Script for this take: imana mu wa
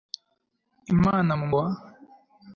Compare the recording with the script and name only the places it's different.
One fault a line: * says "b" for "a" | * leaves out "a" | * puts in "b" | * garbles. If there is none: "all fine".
all fine